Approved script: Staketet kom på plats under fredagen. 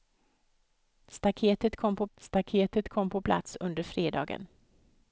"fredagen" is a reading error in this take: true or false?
false